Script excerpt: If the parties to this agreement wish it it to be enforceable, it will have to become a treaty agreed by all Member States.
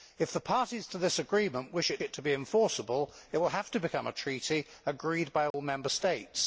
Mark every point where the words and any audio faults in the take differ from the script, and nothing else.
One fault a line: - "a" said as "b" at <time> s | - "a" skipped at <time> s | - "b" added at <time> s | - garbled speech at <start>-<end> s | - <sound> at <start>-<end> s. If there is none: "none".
- dropout at 5.5-5.5 s